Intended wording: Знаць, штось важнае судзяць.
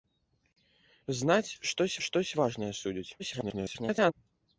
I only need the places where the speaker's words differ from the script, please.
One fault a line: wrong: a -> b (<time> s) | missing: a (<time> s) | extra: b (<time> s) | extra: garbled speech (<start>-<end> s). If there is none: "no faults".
extra: штось (2.1 s)
extra: garbled speech (3.2-4.1 s)